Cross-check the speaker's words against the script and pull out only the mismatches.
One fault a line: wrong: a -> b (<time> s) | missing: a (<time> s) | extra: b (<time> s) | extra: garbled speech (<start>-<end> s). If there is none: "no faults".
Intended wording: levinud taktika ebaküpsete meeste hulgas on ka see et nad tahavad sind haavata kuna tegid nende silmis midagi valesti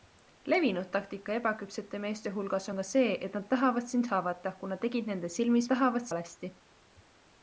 wrong: midagi -> tahavad (5.7 s)